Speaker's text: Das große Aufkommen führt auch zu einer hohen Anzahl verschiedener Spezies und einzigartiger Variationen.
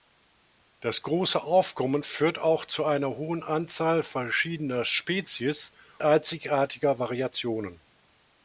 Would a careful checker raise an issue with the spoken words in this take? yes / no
yes